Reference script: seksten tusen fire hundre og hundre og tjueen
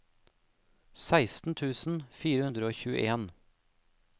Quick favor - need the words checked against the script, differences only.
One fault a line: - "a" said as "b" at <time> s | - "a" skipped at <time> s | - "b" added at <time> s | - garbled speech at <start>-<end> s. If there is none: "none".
- "hundre og" skipped at 2.8 s